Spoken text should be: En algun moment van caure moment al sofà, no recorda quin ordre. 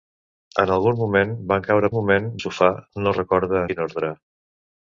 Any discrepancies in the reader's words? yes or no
no